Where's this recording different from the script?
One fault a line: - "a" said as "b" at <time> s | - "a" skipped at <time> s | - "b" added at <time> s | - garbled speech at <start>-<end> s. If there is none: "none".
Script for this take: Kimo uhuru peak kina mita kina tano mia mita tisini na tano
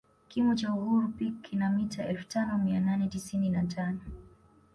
- "cha" added at 0.5 s
- "kina" said as "elfu" at 2.1 s
- "mita" said as "nane" at 2.8 s